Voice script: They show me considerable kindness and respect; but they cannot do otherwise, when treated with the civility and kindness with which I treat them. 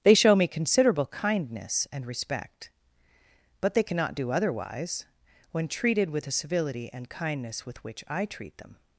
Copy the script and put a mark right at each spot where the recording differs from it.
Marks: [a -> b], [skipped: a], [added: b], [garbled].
They show me considerable kindness and respect; but they cannot do otherwise, when treated with the civility and kindness with which I treat them.